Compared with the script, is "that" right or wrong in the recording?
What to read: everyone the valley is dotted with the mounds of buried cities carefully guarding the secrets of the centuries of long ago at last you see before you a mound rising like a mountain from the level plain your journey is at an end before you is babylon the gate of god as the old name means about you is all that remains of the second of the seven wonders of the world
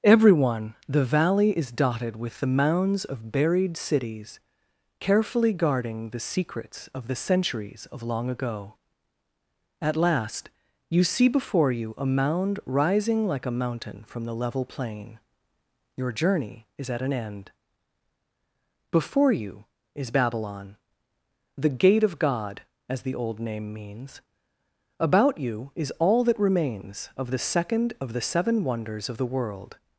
right